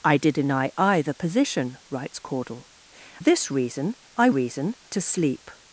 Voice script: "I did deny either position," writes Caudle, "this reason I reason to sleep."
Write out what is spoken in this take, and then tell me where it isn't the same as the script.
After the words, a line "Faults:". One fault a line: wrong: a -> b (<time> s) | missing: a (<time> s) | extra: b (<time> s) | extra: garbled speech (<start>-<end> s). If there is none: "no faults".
"I did deny either position," writes Caudle, "this reason I reason to sleep."
Faults:
no faults